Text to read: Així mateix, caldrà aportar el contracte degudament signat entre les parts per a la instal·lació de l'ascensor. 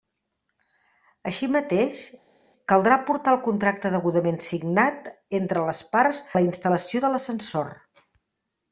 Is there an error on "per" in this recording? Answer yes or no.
yes